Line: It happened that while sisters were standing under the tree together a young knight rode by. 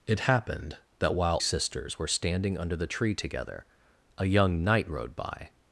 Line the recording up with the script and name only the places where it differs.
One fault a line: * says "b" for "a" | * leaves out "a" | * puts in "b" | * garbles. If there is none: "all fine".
all fine